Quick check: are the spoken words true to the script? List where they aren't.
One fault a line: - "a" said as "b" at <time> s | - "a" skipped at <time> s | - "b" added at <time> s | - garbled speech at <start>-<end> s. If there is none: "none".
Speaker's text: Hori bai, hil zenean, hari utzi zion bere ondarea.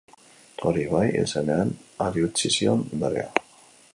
- "bere" skipped at 2.9 s